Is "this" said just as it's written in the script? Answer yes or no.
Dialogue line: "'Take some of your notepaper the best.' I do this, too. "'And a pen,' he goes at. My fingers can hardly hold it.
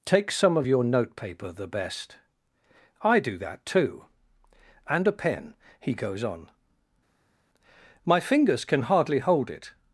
no